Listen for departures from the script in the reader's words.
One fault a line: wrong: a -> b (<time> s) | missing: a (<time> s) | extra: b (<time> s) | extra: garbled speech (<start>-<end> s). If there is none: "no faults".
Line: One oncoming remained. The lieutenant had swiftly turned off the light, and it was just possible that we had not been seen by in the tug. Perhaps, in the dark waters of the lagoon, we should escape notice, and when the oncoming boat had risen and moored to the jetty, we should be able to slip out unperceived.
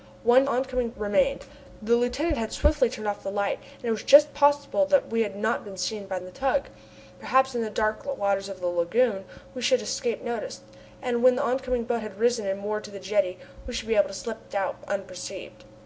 no faults